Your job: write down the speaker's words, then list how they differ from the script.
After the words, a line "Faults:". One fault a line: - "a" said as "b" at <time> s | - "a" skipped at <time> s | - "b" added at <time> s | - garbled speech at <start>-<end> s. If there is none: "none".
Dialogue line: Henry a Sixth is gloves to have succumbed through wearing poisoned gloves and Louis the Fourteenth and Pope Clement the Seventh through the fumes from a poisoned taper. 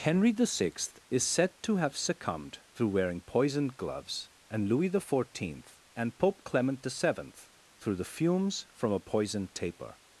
Henry the Sixth is said to have succumbed through wearing poisoned gloves and Louis the Fourteenth and Pope Clement the Seventh through the fumes from a poisoned taper.
Faults:
- "a" said as "the" at 0.3 s
- "gloves" said as "said" at 1.2 s